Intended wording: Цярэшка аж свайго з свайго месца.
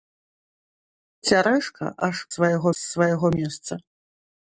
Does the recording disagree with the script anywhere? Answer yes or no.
no